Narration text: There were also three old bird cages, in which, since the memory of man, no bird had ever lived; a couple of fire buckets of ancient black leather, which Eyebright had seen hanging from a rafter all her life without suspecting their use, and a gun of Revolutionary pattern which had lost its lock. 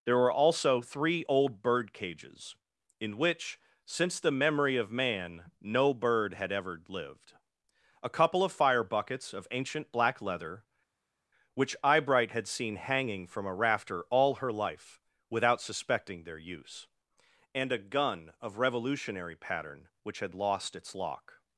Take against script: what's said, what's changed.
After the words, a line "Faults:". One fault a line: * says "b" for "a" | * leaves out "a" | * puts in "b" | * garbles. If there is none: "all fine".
There were also three old bird cages, in which, since the memory of man, no bird had ever lived; a couple of fire buckets of ancient black leather, which Eyebright had seen hanging from a rafter all her life without suspecting their use, and a gun of Revolutionary pattern which had lost its lock.
Faults:
all fine